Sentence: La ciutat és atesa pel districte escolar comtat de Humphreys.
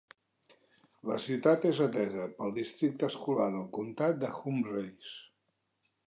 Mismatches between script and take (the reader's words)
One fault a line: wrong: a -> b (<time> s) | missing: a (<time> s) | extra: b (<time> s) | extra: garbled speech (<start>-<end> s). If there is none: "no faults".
extra: del (3.5 s)